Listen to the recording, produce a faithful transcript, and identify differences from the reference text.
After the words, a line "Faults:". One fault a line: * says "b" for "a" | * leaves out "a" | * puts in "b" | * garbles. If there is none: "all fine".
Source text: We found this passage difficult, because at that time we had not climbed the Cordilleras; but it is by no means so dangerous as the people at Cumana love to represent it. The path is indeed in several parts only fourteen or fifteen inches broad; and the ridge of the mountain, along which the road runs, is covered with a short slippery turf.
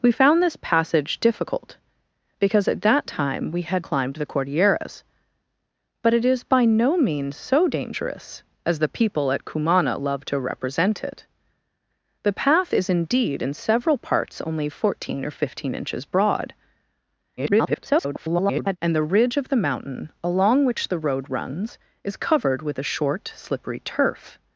We found this passage difficult, because at that time we had climbed the Cordilleras; but it is by no means so dangerous as the people at Cumana love to represent it. The path is indeed in several parts only fourteen or fifteen inches broad; [garbled] and the ridge of the mountain, along which the road runs, is covered with a short slippery turf.
Faults:
* leaves out "not"
* garbles